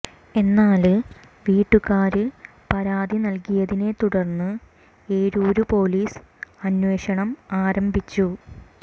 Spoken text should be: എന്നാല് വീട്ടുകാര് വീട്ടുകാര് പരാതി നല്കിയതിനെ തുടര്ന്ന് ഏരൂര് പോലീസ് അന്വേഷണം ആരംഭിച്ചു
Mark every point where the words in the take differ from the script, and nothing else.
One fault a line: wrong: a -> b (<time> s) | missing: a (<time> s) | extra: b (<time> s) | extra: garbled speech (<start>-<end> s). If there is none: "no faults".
missing: വീട്ടുകാര് (2.2 s)